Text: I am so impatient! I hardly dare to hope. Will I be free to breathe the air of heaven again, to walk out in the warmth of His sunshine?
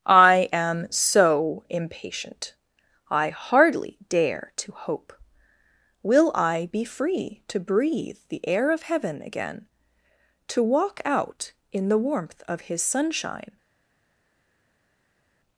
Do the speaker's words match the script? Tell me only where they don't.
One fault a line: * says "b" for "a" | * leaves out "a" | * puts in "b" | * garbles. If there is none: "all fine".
all fine